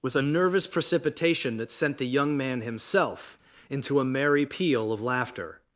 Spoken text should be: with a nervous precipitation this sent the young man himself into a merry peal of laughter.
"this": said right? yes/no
no